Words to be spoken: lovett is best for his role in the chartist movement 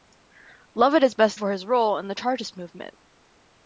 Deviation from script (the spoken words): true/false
false